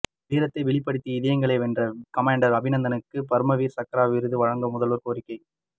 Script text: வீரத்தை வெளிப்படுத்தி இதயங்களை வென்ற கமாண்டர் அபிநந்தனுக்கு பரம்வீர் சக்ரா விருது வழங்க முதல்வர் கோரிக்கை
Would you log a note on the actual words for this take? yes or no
no